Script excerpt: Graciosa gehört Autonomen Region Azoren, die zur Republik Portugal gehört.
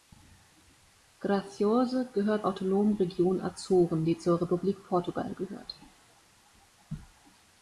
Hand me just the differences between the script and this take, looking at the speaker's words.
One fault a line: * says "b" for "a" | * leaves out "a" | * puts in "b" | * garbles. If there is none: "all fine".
all fine